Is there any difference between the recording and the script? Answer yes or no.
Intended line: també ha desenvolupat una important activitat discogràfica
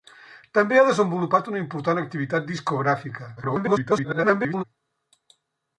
yes